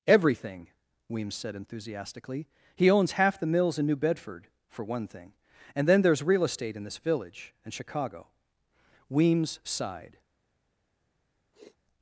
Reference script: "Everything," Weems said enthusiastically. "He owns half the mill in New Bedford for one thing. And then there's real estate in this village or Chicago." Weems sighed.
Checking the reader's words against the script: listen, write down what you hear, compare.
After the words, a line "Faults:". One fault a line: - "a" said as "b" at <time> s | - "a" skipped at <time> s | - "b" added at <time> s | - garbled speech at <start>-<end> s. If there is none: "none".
"Everything," Weems said enthusiastically. "He owns half the mills in New Bedford for one thing. And then there's real estate in this village and Chicago." Weems sighed.
Faults:
- "mill" said as "mills" at 3.5 s
- "or" said as "and" at 7.6 s